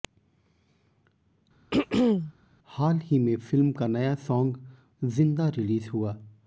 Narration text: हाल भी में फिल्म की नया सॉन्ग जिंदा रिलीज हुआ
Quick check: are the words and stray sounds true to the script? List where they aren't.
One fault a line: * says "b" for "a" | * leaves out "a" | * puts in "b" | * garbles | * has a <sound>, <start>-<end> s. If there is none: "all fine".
* has a throat clearing, 1.7-2.3 s
* says "ही" for "भी"
* says "का" for "की"